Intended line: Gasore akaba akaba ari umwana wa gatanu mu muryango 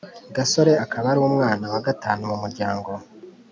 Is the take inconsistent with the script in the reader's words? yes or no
yes